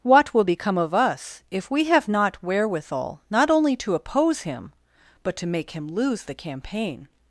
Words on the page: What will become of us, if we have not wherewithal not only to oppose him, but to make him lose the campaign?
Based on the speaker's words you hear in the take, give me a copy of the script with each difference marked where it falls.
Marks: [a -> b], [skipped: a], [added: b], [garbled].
What will become of us, if we have not wherewithal not only to oppose him, but to make him lose the campaign?